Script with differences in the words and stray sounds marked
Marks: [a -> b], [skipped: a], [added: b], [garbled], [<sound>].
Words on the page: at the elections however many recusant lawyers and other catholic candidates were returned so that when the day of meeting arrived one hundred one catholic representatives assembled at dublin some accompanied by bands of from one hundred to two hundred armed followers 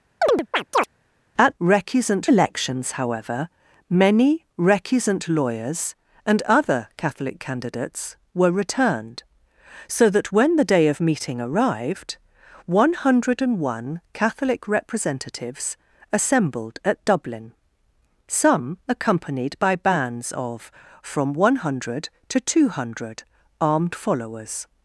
[chirp] at [the -> recusant] elections however many recusant lawyers and other catholic candidates were returned so that when the day of meeting arrived one hundred one catholic representatives assembled at dublin some accompanied by bands of from one hundred to two hundred armed followers